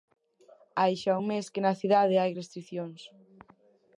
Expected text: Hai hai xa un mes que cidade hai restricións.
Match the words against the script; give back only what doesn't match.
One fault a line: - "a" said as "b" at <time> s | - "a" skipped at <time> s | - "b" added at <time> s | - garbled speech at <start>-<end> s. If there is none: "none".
- "hai" skipped at 0.9 s
- "na" added at 1.6 s